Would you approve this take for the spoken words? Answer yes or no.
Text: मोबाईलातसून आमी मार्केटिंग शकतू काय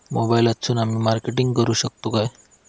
no